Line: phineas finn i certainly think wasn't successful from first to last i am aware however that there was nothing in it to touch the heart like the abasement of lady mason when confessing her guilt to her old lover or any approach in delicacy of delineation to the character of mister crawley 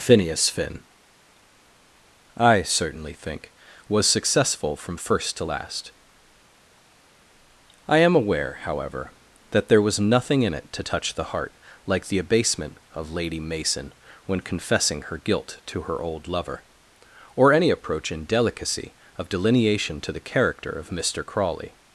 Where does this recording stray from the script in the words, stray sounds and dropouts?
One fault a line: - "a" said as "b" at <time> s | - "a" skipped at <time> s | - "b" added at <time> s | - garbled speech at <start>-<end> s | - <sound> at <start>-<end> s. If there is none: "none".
- "wasn't" said as "was" at 3.9 s